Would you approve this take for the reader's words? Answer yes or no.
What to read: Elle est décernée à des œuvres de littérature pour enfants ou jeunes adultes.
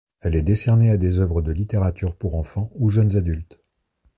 yes